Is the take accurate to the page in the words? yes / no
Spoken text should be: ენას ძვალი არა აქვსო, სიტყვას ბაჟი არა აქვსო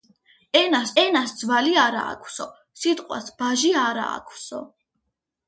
no